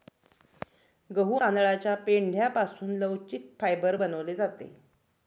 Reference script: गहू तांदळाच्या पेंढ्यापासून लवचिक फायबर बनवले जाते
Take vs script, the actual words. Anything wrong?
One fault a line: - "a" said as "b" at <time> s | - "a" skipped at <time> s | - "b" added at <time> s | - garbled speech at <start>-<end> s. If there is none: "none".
none